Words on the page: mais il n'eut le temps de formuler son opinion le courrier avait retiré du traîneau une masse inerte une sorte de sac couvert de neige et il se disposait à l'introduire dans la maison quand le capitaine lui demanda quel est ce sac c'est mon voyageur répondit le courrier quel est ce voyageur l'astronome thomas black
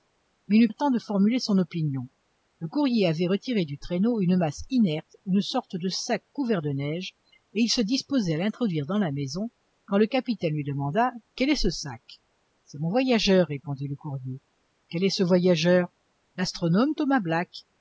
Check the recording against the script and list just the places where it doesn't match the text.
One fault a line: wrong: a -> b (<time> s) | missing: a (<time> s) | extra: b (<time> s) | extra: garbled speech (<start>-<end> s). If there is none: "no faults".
no faults